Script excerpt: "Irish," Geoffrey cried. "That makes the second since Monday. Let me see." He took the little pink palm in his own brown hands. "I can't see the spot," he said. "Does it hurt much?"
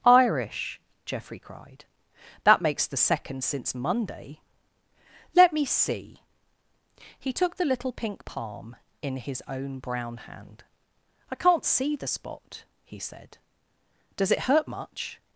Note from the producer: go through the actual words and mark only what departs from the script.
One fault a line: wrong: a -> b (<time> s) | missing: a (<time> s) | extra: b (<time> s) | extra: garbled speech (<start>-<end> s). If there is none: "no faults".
wrong: hands -> hand (10.2 s)